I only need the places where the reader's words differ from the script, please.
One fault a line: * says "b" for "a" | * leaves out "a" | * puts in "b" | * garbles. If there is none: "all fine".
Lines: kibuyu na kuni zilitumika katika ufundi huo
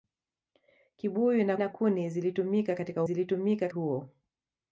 * puts in "na"
* says "zilitumika" for "ufundi"